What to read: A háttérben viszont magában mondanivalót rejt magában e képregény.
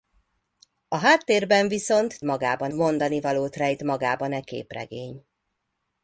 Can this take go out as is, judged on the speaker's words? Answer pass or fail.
pass